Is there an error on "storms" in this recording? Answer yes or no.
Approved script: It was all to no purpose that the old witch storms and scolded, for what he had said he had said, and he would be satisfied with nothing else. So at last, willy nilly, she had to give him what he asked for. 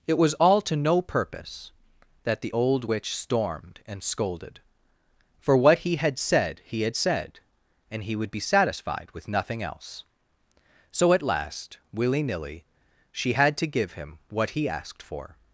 yes